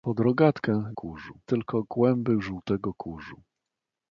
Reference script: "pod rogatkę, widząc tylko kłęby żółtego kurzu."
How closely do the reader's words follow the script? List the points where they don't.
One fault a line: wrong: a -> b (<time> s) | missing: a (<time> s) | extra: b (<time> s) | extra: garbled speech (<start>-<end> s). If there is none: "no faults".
wrong: widząc -> kurzu (0.9 s)